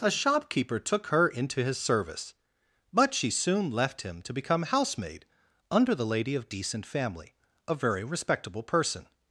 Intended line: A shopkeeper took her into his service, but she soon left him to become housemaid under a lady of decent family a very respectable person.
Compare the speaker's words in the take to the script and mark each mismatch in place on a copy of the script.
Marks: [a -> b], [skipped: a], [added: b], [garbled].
A shopkeeper took her into his service, but she soon left him to become housemaid under [a -> the] lady of decent family a very respectable person.